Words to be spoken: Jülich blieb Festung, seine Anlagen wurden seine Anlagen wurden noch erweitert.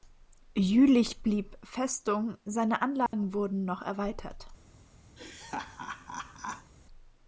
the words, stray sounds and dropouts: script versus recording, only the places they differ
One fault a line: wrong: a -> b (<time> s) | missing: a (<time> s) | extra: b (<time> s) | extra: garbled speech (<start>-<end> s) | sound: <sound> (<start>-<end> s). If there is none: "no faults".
sound: dropout (3.1-3.1 s)
missing: seine Anlagen wurden (3.6 s)
sound: laugh (5.2-6.7 s)